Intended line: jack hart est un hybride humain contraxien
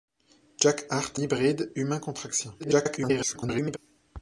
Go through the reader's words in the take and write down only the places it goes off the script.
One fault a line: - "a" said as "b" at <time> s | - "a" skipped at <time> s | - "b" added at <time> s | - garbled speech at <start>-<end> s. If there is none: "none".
- "est un" skipped at 1.2 s
- garbled speech at 2.6-3.8 s